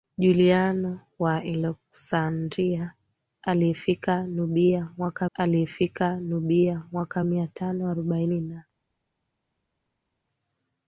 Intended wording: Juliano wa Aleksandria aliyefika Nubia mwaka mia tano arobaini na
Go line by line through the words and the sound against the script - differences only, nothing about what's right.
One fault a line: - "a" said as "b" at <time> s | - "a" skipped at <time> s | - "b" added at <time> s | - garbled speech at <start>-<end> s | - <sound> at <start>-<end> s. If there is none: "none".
- "aliyefika Nubia mwaka" added at 5.3 s